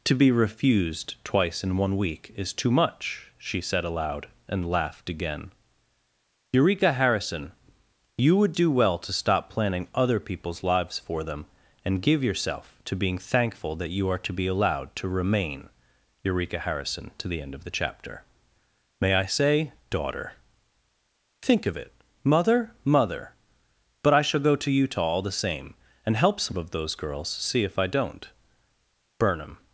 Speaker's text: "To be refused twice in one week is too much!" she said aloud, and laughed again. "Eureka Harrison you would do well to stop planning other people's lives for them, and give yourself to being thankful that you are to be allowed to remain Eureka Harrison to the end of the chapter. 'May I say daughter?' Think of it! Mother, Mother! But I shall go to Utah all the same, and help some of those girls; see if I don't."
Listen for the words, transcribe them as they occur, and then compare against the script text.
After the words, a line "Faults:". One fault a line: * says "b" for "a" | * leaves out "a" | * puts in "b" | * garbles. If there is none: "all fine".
"To be refused twice in one week is too much!" she said aloud, and laughed again. "Eureka Harrison you would do well to stop planning other people's lives for them, and give yourself to being thankful that you are to be allowed to remain Eureka Harrison to the end of the chapter. 'May I say daughter?' Think of it! Mother, Mother! But I shall go to Utah all the same, and help some of those girls; see if I don't." Burnham
Faults:
* puts in "Burnham"